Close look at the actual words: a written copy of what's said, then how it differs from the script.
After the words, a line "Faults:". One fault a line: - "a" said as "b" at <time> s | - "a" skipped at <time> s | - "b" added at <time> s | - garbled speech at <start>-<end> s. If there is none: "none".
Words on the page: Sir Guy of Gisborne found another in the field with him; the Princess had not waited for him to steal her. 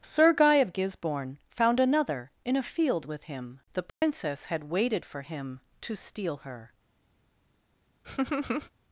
Sir Guy of Gisborne found another in a field with him; the Princess had waited for him to steal her.
Faults:
- "the" said as "a" at 2.5 s
- "not" skipped at 4.7 s